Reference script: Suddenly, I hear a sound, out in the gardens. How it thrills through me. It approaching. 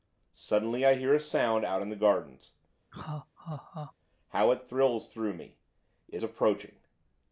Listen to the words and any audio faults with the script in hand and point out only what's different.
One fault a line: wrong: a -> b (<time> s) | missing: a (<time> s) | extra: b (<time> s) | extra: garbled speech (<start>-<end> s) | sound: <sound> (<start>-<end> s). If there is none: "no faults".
sound: laugh (2.9-3.9 s)